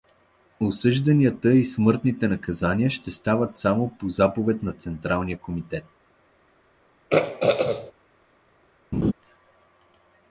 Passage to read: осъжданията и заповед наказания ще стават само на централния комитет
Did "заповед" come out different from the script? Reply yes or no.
yes